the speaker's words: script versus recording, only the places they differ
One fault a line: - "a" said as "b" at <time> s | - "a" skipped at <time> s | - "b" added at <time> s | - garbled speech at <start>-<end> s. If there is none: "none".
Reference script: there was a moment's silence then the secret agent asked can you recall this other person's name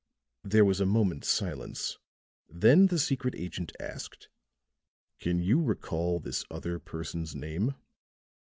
none